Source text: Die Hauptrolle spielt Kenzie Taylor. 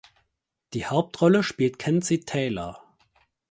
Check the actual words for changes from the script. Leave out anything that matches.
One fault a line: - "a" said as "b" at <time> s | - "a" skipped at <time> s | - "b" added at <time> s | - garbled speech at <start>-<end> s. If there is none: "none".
none